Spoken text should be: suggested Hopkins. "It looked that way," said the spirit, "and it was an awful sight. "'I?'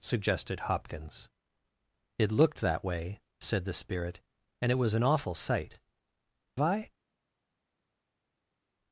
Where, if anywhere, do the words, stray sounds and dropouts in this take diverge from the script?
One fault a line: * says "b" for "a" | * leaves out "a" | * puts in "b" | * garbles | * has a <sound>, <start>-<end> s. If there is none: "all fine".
all fine